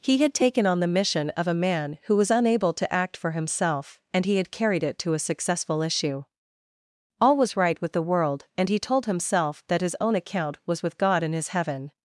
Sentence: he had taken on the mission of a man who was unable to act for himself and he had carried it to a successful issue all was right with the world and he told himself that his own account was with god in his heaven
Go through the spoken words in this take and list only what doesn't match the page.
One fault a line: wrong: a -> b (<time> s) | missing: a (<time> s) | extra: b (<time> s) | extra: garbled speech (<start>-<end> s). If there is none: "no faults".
no faults